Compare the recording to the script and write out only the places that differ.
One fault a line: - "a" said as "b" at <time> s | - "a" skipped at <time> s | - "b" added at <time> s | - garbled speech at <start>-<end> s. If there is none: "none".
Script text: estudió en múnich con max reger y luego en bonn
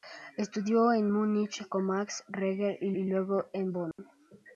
- "y" added at 2.9 s